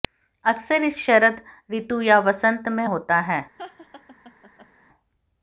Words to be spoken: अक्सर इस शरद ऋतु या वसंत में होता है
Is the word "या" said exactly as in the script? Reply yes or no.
yes